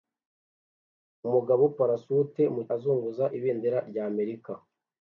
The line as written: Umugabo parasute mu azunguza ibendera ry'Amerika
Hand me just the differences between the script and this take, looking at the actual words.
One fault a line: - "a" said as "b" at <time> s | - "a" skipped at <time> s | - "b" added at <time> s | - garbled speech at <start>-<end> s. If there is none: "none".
none